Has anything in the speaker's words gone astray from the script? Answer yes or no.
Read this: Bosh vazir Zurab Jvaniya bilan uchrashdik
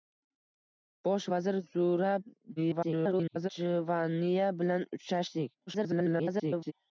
yes